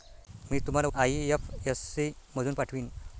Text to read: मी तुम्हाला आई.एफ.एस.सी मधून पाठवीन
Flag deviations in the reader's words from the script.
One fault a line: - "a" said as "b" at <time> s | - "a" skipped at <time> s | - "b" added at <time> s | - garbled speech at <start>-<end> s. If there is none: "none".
none